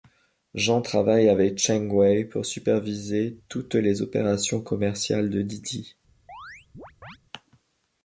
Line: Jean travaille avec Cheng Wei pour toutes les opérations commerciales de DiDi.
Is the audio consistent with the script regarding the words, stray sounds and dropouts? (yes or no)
no